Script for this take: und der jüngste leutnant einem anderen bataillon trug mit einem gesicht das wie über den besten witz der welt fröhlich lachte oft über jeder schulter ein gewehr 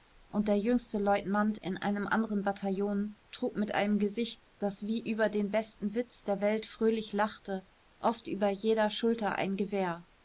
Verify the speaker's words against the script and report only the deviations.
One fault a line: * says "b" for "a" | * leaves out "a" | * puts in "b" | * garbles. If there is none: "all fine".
* puts in "in"